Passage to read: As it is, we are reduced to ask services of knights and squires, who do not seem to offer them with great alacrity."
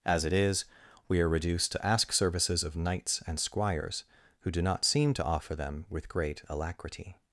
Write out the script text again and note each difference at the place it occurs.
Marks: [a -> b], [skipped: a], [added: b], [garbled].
As it is, we are reduced to ask services of knights and squires, who do not seem to offer them with great alacrity."